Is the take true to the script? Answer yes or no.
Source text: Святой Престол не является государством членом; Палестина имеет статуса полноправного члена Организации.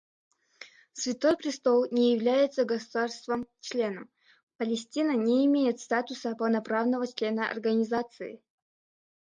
no